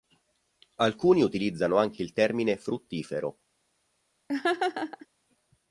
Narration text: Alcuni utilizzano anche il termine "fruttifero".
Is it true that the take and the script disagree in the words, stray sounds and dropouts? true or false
true